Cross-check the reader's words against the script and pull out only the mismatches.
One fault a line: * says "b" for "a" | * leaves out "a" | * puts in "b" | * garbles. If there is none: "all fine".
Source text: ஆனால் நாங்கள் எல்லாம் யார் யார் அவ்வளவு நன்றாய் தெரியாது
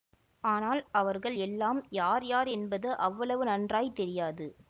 * says "அவர்கள்" for "நாங்கள்"
* puts in "என்பது"